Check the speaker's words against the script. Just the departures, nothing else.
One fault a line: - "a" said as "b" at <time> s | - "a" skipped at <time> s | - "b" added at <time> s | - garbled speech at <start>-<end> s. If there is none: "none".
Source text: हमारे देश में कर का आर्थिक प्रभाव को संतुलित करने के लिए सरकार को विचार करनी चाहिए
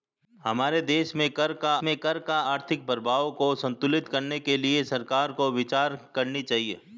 - "में कर का" added at 1.8 s